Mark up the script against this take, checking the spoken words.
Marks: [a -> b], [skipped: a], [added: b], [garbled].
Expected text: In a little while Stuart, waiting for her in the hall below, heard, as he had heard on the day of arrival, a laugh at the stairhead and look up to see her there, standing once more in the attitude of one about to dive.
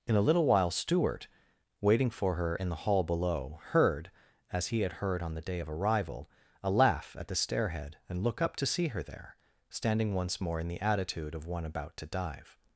In a little while Stuart, waiting for her in the hall below, heard, as he had heard on the day of arrival, a laugh at the stairhead and look up to see her there, standing once more in the attitude of one about to dive.